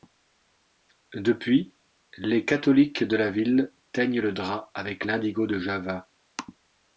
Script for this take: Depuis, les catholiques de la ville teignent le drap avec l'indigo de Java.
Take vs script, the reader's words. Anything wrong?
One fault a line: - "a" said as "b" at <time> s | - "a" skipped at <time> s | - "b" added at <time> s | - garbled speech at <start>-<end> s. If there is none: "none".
none